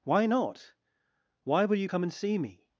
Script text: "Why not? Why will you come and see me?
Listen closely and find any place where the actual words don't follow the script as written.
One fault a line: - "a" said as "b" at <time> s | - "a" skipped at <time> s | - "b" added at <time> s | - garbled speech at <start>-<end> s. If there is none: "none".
none